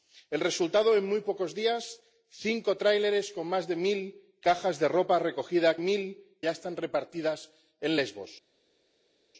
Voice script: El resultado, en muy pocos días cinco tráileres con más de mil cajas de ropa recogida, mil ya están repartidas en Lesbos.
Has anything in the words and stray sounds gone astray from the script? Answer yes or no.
no